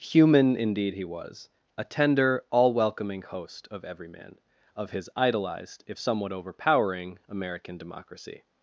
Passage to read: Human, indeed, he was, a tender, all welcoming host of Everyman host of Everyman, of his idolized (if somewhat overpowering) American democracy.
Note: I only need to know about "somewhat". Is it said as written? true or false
true